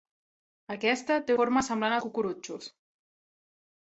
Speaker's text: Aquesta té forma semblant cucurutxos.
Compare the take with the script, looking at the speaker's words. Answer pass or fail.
pass